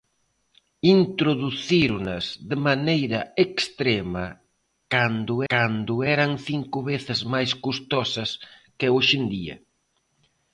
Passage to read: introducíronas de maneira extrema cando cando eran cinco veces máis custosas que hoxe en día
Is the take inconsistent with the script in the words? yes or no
no